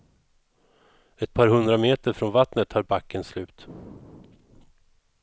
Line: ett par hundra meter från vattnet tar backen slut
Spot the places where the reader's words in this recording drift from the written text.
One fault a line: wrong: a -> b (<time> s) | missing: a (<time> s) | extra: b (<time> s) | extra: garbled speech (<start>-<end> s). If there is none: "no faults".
no faults